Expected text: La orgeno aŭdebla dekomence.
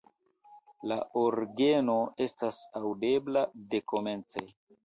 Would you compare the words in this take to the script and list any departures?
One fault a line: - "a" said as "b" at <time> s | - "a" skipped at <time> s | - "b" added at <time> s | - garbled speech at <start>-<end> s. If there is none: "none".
- "estas" added at 2.3 s